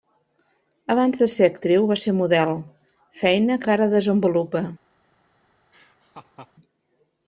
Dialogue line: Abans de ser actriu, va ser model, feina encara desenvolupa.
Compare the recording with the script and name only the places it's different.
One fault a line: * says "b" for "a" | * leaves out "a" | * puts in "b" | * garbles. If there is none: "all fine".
all fine